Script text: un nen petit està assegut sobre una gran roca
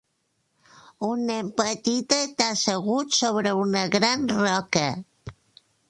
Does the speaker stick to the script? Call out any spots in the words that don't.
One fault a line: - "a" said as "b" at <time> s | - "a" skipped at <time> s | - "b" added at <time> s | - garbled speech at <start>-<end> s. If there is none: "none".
none